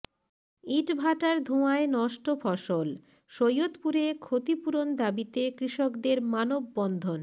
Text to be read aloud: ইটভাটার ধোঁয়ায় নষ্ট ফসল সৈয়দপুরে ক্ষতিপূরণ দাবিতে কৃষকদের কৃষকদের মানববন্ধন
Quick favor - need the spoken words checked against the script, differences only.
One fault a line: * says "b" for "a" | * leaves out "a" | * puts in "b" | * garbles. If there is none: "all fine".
* leaves out "কৃষকদের"